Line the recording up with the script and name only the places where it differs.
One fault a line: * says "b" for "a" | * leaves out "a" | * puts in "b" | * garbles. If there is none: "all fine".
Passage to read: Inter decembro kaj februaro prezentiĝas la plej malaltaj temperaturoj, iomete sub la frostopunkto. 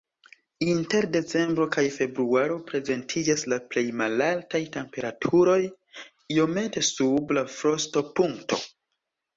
all fine